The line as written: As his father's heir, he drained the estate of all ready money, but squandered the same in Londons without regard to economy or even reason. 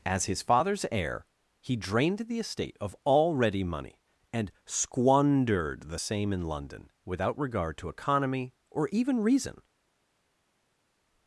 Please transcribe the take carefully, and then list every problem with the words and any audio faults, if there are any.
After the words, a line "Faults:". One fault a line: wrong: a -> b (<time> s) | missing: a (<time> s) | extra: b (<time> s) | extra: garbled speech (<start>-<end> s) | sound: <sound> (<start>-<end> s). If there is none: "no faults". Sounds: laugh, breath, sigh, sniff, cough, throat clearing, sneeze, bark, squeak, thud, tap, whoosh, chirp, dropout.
As his father's heir, he drained the estate of all ready money, and squandered the same in London without regard to economy or even reason.
Faults:
wrong: but -> and (4.3 s)
wrong: Londons -> London (6.4 s)